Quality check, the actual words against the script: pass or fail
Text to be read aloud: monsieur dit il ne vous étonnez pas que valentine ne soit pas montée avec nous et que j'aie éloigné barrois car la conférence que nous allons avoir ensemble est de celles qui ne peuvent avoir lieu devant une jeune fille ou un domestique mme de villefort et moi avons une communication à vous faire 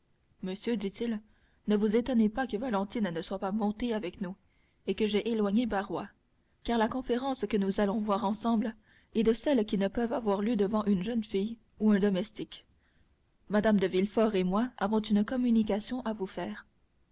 pass